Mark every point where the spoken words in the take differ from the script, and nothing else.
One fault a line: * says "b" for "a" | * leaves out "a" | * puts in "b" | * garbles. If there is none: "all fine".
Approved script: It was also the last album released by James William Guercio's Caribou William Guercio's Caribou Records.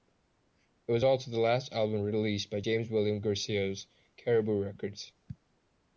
* leaves out "William Guercio's Caribou"